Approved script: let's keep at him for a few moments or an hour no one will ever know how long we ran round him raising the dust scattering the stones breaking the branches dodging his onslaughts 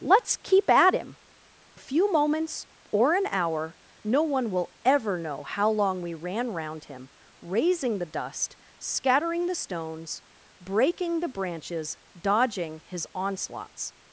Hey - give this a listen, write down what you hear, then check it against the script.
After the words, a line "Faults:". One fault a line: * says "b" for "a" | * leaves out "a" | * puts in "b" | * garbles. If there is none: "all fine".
let's keep at him a few moments or an hour no one will ever know how long we ran round him raising the dust scattering the stones breaking the branches dodging his onslaughts
Faults:
* leaves out "for"